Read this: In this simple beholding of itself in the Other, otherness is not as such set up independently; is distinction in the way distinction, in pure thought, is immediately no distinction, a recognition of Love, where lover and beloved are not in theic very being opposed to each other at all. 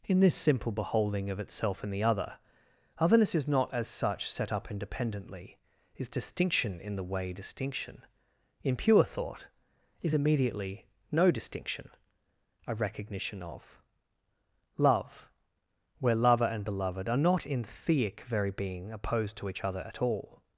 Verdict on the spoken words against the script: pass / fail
pass